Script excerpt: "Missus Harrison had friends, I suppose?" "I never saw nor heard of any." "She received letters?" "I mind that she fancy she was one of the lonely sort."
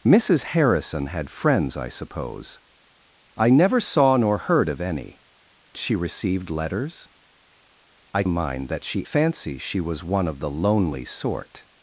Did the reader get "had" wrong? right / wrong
right